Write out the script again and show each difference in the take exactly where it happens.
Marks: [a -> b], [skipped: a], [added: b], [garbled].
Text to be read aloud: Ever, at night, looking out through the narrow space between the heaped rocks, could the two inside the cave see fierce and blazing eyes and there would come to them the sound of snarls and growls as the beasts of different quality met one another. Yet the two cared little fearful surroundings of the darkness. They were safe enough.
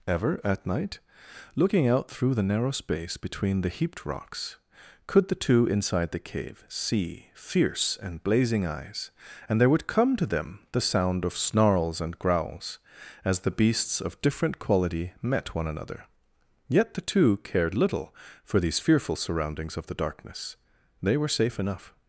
Ever, at night, looking out through the narrow space between the heaped rocks, could the two inside the cave see fierce and blazing eyes and there would come to them the sound of snarls and growls as the beasts of different quality met one another. Yet the two cared little [added: for these] fearful surroundings of the darkness. They were safe enough.